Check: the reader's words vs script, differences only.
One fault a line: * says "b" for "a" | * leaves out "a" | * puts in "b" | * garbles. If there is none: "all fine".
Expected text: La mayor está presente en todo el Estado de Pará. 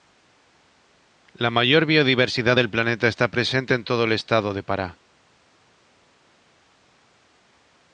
* puts in "biodiversidad del planeta"